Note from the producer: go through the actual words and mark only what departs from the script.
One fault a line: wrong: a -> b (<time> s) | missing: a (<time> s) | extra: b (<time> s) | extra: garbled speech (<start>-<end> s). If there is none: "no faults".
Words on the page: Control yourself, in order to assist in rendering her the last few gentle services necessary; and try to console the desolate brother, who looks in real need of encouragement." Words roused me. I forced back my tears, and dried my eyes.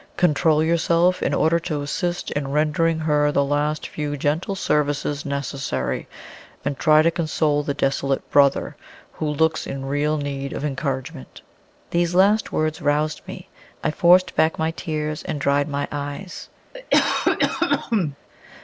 extra: These last (11.9 s)